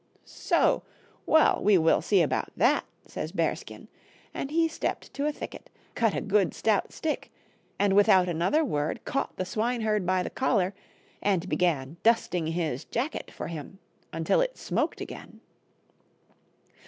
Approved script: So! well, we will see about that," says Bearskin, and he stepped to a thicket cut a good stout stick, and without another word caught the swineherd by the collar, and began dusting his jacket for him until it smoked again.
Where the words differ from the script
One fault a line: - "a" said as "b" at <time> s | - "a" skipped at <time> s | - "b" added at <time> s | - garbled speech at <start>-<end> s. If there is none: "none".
none